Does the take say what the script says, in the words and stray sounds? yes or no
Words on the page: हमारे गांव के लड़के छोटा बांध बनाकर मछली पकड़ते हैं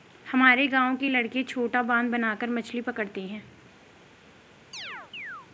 no